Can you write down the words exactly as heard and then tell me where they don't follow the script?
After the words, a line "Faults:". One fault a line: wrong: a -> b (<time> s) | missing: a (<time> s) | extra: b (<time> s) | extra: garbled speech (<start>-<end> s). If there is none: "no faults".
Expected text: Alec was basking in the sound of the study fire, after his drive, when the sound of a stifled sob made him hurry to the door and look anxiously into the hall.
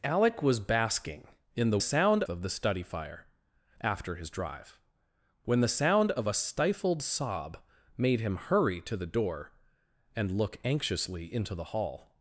Alec was basking in the sound of the study fire, after his drive, when the sound of a stifled sob made him hurry to the door and look anxiously into the hall.
Faults:
no faults